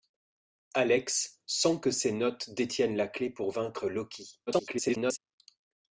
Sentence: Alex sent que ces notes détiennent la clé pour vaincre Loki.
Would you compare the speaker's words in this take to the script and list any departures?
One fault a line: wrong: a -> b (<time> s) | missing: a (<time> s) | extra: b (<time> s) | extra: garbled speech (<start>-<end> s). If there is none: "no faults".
extra: garbled speech (4.5-5.2 s)